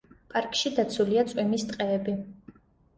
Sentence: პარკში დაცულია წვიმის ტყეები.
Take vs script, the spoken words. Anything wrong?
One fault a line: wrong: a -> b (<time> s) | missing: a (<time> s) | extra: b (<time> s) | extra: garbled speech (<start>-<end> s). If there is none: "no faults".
no faults